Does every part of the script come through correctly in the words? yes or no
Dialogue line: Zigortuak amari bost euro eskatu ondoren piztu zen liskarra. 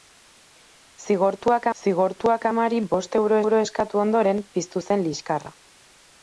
no